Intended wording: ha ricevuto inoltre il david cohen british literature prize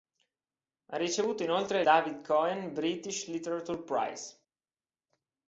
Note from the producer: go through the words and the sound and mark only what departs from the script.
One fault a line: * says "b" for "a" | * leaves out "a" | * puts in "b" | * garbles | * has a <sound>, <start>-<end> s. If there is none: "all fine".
* leaves out "il"